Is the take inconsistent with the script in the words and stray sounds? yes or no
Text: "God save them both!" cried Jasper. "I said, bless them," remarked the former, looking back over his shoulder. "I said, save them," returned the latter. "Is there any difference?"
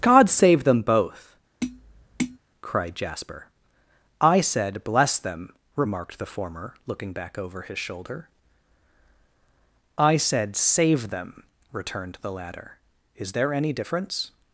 yes